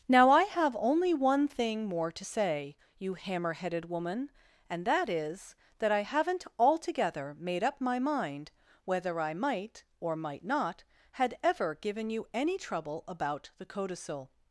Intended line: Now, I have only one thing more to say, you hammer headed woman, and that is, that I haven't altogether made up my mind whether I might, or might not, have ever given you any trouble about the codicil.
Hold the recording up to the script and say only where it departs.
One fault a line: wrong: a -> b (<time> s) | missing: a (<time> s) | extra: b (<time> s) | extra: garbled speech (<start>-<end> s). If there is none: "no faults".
wrong: have -> had (11.1 s)